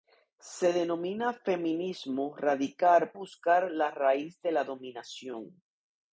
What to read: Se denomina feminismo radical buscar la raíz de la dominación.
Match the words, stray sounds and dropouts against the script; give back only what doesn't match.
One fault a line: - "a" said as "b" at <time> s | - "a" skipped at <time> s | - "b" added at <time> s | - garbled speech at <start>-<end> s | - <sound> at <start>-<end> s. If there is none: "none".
none